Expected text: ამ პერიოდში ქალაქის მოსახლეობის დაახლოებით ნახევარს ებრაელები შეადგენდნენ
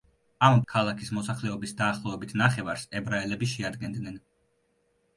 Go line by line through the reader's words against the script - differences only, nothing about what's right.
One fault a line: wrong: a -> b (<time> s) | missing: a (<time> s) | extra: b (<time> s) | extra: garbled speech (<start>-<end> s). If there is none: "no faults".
missing: პერიოდში (0.6 s)